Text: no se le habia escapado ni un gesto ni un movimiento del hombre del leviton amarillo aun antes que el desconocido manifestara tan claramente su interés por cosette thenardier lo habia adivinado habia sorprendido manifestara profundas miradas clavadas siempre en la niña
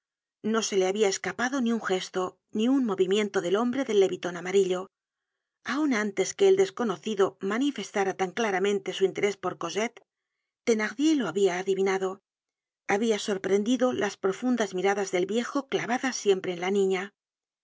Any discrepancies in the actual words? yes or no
yes